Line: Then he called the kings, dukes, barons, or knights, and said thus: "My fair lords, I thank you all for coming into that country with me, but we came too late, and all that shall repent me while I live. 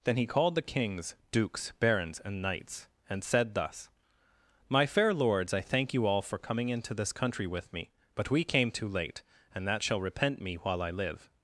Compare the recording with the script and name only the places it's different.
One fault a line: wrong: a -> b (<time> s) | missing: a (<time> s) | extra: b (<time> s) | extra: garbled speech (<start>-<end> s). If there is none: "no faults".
wrong: or -> and (2.2 s)
wrong: that -> this (6.9 s)
missing: all (9.7 s)